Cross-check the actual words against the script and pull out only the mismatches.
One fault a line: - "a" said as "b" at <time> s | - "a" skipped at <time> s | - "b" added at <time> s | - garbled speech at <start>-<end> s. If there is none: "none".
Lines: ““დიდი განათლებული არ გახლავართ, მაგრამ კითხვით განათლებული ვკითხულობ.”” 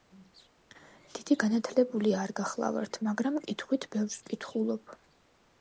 - "განათლებული" said as "ბევრს" at 4.0 s